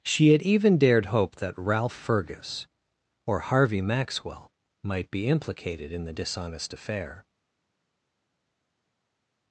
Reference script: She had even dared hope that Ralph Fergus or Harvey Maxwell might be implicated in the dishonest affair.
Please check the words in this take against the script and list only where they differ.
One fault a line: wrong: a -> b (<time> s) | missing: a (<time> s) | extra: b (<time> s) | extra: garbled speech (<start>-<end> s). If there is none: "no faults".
no faults